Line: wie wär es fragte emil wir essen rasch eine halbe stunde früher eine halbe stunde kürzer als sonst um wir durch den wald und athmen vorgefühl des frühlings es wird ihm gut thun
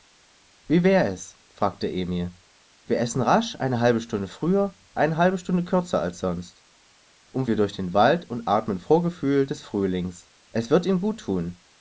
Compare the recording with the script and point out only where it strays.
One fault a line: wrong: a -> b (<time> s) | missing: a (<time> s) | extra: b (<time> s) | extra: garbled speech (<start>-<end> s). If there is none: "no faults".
no faults